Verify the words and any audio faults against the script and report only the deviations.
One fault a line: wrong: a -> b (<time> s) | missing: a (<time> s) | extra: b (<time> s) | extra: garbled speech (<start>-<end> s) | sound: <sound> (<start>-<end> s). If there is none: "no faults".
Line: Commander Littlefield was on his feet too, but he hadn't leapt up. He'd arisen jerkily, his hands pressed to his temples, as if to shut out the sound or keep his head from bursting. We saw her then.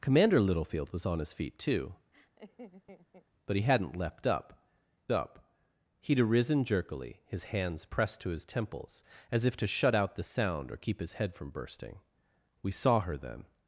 sound: laugh (2.1-3.3 s)
extra: up (5.1 s)